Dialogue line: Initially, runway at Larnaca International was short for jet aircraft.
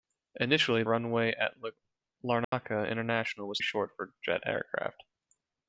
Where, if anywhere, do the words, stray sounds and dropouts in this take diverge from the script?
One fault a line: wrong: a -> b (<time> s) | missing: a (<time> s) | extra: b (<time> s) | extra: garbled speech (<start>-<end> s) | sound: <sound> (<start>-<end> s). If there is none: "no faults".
sound: dropout (2.4-2.5 s)